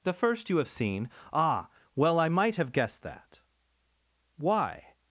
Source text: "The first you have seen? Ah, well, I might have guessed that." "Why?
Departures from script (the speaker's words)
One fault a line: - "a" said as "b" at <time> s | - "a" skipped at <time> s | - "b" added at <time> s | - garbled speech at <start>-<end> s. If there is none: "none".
none